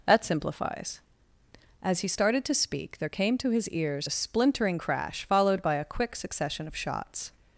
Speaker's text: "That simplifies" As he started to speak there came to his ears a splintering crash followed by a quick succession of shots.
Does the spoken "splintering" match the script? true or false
true